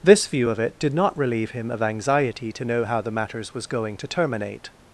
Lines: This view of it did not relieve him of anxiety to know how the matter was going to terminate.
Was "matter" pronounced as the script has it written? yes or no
no